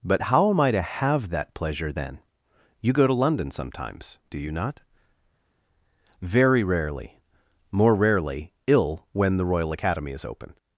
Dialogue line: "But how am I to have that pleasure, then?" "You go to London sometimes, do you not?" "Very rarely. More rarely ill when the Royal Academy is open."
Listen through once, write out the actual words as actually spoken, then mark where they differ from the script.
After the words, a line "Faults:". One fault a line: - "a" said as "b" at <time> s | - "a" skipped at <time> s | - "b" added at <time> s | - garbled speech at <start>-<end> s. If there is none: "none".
"But how am I to have that pleasure, then?" "You go to London sometimes, do you not?" "Very rarely. More rarely ill when the Royal Academy is open."
Faults:
none